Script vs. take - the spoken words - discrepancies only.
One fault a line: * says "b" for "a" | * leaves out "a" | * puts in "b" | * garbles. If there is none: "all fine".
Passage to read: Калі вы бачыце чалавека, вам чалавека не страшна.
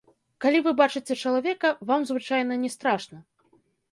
* says "звычайна" for "чалавека"